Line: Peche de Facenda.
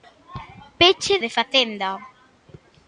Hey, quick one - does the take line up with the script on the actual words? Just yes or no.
yes